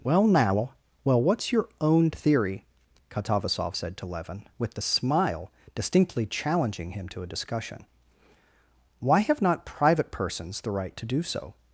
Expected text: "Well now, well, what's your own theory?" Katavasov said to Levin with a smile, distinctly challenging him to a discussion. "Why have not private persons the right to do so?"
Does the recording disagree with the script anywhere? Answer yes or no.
yes